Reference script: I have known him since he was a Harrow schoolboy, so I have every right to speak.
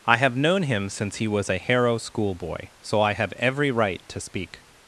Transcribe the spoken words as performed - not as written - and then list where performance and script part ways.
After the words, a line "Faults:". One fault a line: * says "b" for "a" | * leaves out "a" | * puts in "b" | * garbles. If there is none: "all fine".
I have known him since he was a Harrow schoolboy, so I have every right to speak.
Faults:
all fine